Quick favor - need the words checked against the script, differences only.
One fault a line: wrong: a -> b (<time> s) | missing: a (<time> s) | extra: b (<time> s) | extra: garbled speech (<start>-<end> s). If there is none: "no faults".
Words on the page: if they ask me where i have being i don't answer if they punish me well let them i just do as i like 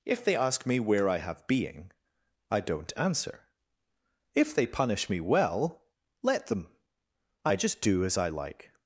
no faults